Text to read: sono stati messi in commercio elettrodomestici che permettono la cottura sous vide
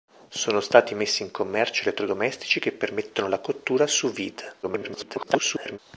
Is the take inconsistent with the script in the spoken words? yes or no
yes